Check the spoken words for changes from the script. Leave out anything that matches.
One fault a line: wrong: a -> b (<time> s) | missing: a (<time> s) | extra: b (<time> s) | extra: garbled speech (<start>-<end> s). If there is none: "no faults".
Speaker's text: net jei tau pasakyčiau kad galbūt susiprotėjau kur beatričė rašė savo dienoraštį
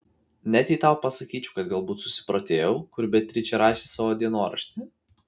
no faults